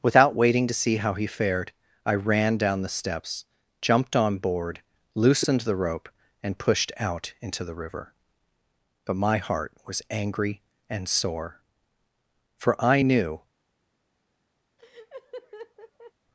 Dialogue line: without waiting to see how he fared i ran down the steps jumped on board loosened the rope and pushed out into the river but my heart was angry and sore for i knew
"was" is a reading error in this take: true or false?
false